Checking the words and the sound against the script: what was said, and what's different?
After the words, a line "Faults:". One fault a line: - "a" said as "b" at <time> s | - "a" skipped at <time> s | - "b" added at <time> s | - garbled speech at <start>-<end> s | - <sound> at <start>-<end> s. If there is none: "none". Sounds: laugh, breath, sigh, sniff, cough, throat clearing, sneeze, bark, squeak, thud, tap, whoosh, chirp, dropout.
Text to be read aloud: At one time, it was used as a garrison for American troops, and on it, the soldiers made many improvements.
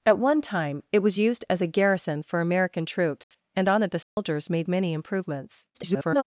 At one time, it was used as a garrison for American troops, and on it, the soldiers made many improvements. [garbled]
Faults:
- dropout at 3.2-3.3 s
- dropout at 4.0-4.2 s
- garbled speech at 5.7-6.2 s